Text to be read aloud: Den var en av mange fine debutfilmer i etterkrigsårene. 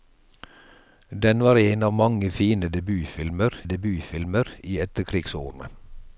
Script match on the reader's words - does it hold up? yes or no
no